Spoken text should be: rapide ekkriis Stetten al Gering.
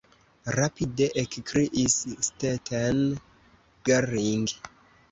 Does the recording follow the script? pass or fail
fail